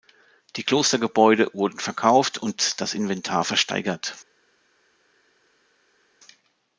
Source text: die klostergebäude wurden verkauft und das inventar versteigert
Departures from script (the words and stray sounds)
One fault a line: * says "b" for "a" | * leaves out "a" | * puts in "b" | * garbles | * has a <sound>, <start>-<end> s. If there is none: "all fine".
all fine